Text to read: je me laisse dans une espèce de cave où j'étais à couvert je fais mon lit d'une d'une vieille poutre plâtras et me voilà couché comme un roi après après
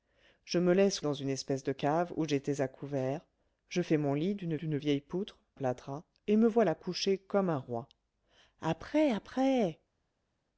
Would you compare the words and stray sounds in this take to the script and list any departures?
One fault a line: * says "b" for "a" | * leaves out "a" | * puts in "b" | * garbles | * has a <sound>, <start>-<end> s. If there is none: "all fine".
all fine